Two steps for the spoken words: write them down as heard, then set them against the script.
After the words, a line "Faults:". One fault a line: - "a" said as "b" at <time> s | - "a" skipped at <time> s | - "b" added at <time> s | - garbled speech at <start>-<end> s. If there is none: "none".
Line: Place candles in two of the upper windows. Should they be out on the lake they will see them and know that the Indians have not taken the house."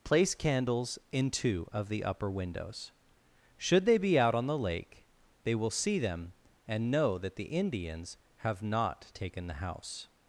Place candles in two of the upper windows. Should they be out on the lake they will see them and know that the Indians have not taken the house."
Faults:
none